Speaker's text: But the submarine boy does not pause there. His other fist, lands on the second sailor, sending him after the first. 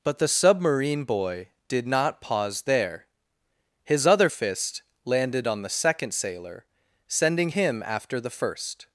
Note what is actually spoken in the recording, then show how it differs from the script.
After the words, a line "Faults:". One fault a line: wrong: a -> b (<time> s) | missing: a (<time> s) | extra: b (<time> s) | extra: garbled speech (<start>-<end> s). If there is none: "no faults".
But the submarine boy did not pause there. His other fist, landed on the second sailor, sending him after the first.
Faults:
wrong: does -> did (1.7 s)
wrong: lands -> landed (5.0 s)